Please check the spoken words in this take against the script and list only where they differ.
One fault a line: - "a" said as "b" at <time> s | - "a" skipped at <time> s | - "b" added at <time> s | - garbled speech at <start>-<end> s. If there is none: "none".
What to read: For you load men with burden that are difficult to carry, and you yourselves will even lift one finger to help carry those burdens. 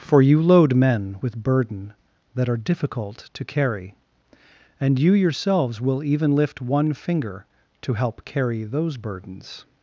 none